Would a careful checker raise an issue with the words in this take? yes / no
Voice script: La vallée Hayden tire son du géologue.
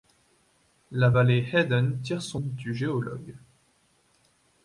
no